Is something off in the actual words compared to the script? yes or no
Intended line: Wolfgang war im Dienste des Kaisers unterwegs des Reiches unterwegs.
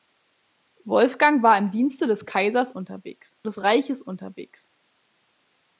no